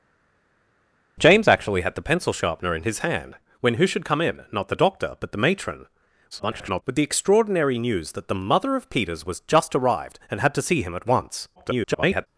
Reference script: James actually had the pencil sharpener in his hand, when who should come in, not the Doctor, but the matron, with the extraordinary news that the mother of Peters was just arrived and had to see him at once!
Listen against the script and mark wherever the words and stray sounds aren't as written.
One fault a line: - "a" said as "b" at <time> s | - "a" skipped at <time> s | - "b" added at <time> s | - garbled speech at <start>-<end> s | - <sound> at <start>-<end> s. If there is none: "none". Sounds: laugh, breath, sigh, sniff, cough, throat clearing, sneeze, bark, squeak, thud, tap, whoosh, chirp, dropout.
- garbled speech at 6.3-6.8 s
- garbled speech at 11.6-12.3 s